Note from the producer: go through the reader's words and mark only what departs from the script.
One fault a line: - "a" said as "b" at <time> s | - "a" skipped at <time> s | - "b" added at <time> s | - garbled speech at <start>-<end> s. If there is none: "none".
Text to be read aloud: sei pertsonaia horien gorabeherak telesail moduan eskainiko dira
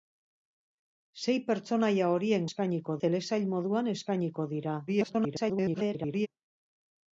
- "gorabeherak" said as "eskainiko" at 2.5 s
- garbled speech at 4.9-6.3 s